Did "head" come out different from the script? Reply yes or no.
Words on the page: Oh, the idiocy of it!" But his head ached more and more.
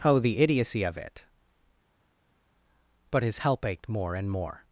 yes